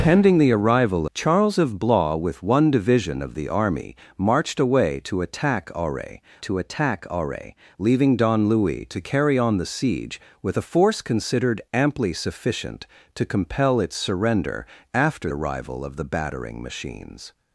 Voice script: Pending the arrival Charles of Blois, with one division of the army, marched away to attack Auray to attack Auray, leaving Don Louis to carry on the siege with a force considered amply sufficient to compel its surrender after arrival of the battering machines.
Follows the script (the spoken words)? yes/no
yes